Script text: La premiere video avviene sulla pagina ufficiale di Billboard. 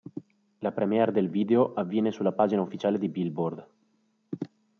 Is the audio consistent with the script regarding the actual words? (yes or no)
no